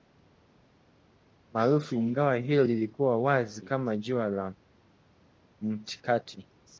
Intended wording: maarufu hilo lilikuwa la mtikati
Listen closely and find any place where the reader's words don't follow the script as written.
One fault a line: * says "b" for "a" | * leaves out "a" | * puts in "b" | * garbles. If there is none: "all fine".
* puts in "ingawa"
* puts in "wazi kama jua"